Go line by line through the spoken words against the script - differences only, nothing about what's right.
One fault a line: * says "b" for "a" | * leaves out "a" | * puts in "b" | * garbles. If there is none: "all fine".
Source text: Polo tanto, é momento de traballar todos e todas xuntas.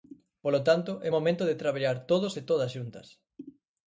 all fine